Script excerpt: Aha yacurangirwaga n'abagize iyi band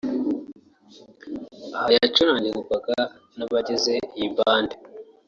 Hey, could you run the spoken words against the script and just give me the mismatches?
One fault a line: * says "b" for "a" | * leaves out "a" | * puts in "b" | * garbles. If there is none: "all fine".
all fine